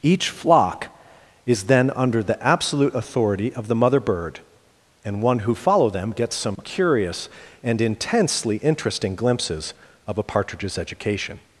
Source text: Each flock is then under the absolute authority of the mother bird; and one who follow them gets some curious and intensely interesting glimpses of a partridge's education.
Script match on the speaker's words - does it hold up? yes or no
yes